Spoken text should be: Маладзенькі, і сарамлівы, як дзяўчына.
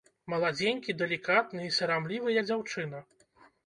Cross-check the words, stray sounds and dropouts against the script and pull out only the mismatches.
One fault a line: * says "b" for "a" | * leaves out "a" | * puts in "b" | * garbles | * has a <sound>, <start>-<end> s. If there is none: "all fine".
* puts in "далікатны"